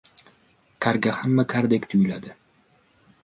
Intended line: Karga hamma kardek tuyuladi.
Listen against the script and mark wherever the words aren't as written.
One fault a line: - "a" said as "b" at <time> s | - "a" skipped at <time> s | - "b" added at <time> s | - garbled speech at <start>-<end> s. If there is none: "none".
none